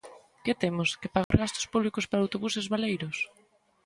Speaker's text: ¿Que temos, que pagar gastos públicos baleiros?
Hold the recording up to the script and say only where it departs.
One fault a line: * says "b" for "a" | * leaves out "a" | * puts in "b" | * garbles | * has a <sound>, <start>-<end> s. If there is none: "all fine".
* has a dropout, 1.2-1.3 s
* puts in "para autobuses"